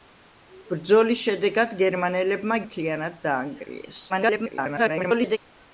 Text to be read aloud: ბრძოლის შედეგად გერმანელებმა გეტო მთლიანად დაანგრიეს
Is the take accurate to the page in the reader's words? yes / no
no